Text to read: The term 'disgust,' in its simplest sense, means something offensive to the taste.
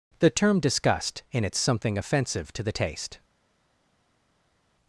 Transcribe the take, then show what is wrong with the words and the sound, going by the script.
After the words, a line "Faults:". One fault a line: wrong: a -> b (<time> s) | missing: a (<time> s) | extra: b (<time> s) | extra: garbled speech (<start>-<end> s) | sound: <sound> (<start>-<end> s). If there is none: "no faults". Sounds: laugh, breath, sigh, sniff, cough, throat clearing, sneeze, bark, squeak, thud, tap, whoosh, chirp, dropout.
The term 'disgust,' in its something offensive to the taste.
Faults:
missing: simplest sense means (1.6 s)